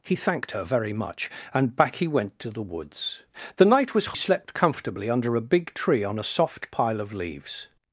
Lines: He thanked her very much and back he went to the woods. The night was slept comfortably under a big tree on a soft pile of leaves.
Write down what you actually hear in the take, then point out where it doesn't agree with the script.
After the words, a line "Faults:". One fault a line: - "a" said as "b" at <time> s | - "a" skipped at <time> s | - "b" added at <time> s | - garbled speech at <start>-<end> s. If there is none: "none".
He thanked her very much and back he went to the woods. The night was slept comfortably under a big tree on a soft pile of leaves.
Faults:
none